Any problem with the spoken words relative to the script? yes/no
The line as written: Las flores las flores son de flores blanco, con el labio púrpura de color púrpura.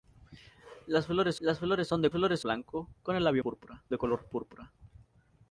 no